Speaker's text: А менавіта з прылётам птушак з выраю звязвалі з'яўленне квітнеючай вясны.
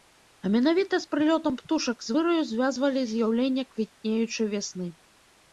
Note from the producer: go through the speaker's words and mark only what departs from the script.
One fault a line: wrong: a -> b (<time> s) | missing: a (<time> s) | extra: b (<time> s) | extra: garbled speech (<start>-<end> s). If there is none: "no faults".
no faults